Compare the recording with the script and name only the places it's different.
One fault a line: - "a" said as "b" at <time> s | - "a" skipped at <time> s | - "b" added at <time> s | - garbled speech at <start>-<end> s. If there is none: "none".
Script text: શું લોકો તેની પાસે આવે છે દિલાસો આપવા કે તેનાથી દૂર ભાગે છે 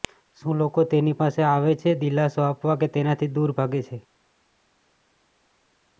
none